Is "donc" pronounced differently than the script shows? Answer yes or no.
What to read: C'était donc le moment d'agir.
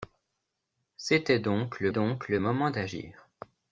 no